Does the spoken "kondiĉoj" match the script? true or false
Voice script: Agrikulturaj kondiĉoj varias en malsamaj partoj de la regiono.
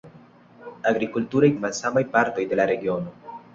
false